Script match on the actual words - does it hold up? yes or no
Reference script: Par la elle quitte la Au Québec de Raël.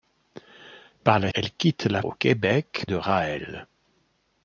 yes